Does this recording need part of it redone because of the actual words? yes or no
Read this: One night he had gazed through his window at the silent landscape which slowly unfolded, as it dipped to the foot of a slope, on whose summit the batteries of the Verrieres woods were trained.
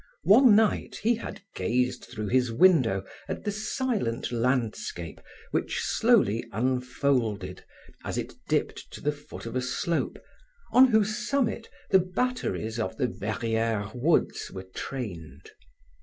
no